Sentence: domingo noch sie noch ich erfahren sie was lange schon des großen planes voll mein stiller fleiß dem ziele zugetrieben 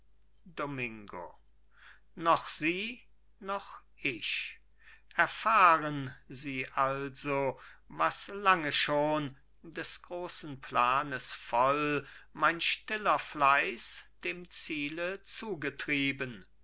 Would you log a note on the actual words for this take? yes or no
yes